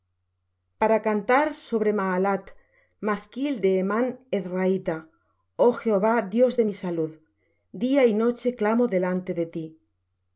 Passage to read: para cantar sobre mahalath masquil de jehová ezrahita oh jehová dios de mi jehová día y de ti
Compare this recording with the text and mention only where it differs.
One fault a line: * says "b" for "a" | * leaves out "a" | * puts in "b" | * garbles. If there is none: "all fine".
* says "hemán" for "jehová"
* says "salud" for "jehová"
* puts in "noche clamo delante"